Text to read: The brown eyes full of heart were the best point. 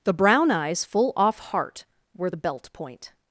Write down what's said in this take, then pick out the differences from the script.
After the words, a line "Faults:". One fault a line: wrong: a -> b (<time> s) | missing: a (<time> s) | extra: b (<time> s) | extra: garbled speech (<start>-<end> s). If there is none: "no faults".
The brown eyes full off heart were the belt point.
Faults:
wrong: of -> off (1.2 s)
wrong: best -> belt (2.4 s)